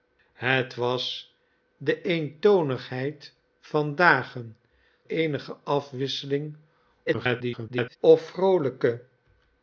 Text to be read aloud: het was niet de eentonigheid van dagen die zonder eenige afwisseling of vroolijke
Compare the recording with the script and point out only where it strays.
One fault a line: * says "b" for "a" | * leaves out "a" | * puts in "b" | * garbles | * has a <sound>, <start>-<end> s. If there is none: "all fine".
* leaves out "niet"
* leaves out "die zonder"
* garbles